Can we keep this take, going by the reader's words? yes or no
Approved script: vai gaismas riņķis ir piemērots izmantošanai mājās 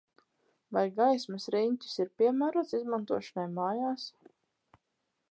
yes